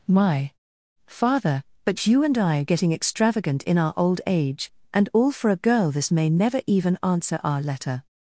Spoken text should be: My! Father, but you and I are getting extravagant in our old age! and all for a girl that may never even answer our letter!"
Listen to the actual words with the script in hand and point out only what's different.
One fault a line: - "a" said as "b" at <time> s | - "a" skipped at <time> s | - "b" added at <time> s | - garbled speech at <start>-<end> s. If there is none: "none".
- "that" said as "this" at 5.9 s